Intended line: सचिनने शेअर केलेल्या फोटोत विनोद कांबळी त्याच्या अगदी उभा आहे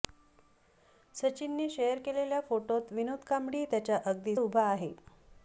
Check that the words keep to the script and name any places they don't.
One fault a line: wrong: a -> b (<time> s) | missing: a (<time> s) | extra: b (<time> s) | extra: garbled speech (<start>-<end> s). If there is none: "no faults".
no faults